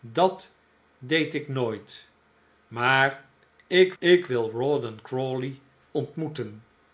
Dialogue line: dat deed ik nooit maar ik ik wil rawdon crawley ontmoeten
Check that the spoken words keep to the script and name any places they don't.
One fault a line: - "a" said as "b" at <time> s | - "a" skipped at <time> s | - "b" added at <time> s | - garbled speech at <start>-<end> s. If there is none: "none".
none